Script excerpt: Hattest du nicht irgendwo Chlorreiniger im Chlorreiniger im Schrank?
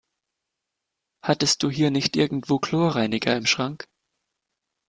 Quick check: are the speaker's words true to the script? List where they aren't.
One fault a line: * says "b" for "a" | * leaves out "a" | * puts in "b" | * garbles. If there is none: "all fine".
* puts in "hier"
* leaves out "Chlorreiniger im"